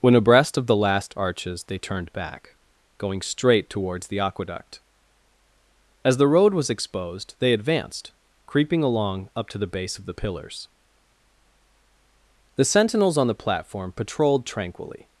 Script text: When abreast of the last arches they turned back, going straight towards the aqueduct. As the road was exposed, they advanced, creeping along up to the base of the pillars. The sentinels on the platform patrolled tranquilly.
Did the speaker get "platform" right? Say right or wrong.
right